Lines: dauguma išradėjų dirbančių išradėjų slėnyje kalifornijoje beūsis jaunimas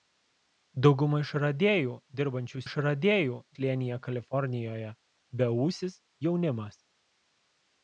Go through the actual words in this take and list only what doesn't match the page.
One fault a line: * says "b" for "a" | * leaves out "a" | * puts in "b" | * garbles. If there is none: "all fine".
all fine